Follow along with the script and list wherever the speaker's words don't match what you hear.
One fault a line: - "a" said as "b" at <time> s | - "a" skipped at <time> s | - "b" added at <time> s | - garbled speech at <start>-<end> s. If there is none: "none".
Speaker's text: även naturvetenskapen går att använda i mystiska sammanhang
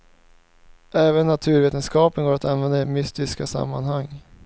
none